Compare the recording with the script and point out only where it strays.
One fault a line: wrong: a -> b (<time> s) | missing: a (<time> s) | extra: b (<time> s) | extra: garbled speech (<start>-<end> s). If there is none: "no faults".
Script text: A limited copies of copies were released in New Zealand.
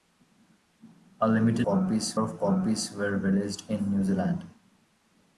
no faults